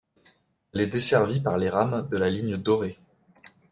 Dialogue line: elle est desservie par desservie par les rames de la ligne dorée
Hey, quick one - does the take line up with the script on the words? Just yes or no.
no